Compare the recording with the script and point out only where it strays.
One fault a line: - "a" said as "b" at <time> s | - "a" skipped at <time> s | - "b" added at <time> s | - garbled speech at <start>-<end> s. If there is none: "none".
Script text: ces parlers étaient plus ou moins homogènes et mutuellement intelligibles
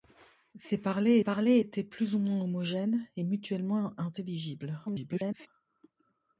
- "parlers" added at 1.2 s
- garbled speech at 4.9-5.5 s